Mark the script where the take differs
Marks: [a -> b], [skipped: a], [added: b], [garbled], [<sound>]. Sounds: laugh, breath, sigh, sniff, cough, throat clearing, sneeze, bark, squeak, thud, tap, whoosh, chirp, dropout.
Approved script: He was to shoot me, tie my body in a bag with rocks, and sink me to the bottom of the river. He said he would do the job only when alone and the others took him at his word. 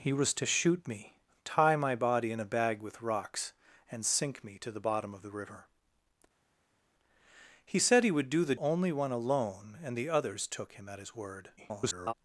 He was to shoot me, tie my body in a bag with rocks, and sink me to the bottom of the river. He said he would do the [skipped: job] only when alone and the others took him at his word. [garbled]